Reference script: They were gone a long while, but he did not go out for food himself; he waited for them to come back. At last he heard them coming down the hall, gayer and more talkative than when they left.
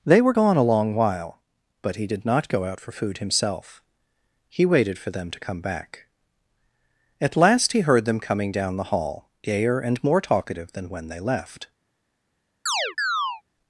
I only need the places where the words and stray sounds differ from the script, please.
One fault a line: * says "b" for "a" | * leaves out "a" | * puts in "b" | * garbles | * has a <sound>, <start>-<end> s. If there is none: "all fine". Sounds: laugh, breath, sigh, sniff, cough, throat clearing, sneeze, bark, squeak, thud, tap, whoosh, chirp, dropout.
* has a chirp, 12.7-13.4 s